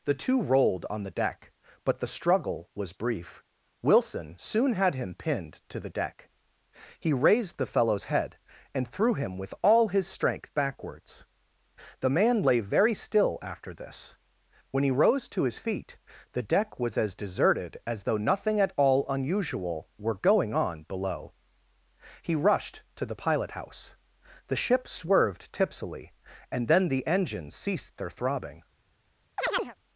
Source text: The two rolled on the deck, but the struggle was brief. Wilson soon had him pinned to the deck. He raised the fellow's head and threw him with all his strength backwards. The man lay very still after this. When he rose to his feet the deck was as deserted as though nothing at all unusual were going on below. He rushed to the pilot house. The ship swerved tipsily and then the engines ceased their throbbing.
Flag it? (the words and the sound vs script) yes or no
yes